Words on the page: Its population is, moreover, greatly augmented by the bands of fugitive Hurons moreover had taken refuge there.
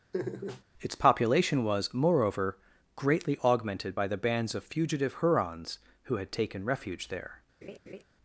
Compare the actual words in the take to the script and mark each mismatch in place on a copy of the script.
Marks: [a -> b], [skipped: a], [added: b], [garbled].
Its population [is, -> was] moreover, greatly augmented by the bands of fugitive Hurons [moreover -> who] had taken refuge there.